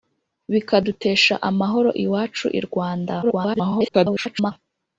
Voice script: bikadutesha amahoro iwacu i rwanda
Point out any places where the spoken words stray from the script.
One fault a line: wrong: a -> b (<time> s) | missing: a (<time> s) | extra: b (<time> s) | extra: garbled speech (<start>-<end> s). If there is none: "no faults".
extra: garbled speech (3.2-4.5 s)